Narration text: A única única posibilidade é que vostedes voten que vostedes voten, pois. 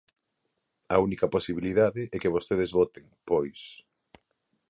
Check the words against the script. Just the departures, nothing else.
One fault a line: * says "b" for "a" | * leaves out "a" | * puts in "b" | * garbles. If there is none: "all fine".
* leaves out "única"
* leaves out "que vostedes voten"